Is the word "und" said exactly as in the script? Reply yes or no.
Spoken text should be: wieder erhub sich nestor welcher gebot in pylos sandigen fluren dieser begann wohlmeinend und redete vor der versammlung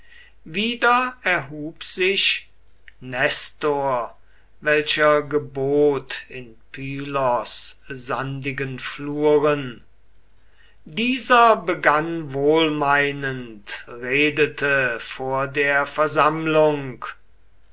no